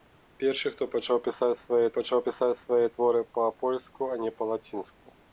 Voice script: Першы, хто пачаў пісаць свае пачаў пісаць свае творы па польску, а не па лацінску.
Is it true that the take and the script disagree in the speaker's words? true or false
false